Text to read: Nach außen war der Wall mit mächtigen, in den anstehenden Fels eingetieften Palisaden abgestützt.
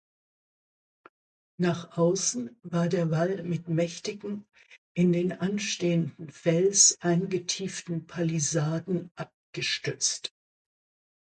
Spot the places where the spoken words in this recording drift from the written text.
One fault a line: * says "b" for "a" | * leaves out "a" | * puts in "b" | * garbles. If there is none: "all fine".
all fine